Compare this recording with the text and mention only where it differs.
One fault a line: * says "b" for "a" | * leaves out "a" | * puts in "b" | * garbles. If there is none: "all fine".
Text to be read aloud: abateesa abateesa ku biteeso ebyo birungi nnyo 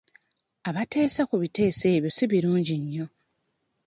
* leaves out "abateesa"
* puts in "si"